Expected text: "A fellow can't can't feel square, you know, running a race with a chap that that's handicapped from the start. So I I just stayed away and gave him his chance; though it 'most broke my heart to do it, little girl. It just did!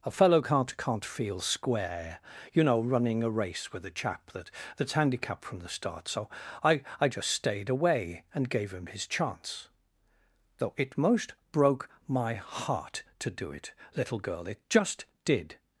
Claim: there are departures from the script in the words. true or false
false